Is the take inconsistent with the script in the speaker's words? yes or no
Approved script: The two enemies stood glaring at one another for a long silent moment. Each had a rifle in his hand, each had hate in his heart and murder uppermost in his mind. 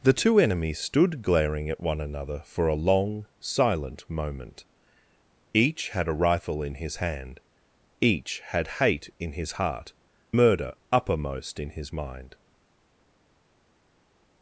yes